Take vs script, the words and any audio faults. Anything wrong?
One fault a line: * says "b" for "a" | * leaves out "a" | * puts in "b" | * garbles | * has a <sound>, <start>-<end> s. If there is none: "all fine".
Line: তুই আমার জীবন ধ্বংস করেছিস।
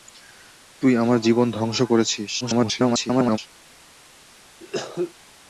* garbles
* has a cough, 4.6-5.1 s